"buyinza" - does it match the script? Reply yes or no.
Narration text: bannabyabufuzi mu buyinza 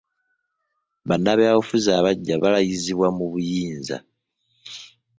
yes